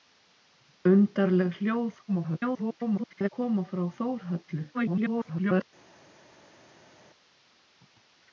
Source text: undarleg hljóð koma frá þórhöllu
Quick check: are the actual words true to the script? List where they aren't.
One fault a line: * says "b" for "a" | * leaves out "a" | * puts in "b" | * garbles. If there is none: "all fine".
* garbles
* garbles